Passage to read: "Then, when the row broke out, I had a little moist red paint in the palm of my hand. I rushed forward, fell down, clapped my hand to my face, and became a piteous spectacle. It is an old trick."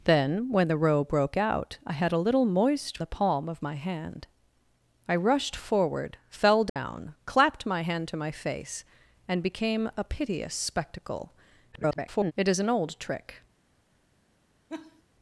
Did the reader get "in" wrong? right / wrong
wrong